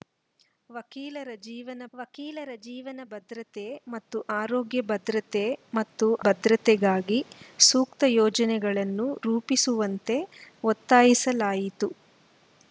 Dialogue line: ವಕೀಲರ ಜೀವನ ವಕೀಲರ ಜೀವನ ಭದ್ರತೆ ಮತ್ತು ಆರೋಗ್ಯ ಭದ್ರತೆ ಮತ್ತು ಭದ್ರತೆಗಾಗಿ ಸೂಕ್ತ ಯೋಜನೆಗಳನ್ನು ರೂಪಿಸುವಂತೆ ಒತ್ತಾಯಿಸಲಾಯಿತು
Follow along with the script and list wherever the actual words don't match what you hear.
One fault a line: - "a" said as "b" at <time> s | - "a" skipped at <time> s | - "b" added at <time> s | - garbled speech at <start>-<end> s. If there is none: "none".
none